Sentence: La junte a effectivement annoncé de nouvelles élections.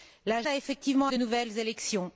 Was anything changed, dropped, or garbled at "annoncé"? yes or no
yes